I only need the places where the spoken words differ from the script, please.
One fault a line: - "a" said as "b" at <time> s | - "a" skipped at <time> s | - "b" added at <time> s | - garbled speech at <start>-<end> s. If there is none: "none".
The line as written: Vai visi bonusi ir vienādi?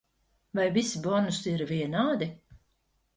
none